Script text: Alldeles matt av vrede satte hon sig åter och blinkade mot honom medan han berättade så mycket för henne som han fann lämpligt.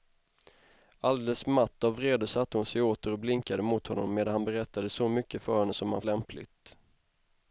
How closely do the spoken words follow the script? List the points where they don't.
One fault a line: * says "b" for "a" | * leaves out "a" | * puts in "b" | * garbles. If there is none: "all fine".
* leaves out "fann"